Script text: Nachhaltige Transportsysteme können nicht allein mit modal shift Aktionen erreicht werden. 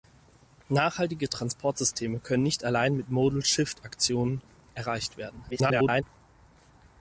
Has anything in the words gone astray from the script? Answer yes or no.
yes